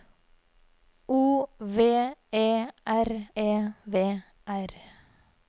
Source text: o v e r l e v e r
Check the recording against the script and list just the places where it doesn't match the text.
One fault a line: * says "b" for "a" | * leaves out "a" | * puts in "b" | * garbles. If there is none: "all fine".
* leaves out "l"
* leaves out "e"